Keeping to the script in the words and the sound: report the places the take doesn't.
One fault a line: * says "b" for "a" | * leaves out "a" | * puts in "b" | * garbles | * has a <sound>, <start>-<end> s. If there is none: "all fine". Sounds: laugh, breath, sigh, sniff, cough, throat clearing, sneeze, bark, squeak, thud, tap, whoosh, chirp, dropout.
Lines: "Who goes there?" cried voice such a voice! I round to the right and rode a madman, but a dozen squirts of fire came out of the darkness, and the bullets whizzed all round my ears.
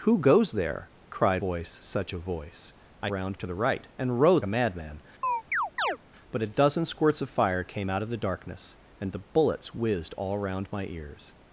* has a chirp, 5.2-6.0 s